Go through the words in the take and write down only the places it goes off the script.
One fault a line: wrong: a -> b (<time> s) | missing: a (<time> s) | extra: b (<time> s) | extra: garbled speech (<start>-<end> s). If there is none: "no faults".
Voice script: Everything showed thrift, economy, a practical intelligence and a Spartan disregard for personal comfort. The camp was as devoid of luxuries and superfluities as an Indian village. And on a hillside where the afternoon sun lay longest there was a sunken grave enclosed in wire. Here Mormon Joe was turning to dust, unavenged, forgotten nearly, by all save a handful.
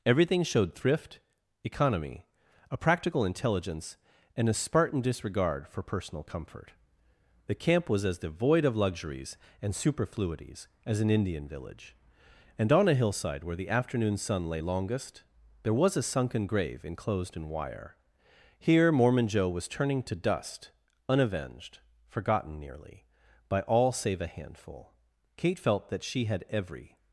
extra: Kate felt that she had every (25.3 s)